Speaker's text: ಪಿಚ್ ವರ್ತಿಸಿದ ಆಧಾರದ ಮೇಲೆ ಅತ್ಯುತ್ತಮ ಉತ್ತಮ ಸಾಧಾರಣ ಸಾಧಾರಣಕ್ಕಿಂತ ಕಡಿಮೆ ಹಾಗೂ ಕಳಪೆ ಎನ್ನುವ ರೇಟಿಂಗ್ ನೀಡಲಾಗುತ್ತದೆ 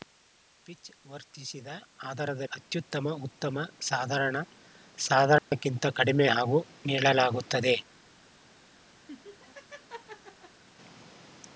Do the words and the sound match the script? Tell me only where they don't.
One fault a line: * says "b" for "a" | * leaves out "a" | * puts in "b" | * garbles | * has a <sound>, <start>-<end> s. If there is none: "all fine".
* leaves out "ಮೇಲೆ"
* has a dropout, 5.4-5.5 s
* leaves out "ಕಳಪೆ ಎನ್ನುವ ರೇಟಿಂಗ್"
* has a laugh, 9.1-10.6 s